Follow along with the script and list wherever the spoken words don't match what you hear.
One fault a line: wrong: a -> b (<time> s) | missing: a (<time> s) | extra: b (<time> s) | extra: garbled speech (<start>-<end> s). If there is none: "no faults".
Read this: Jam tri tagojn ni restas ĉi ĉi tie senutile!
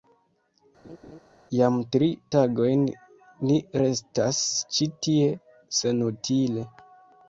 missing: ĉi (4.9 s)